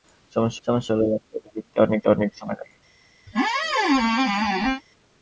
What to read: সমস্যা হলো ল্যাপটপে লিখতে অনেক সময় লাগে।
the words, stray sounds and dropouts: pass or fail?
fail